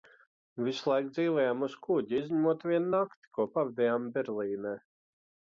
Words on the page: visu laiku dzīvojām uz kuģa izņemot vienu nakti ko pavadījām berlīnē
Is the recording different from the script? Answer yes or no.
no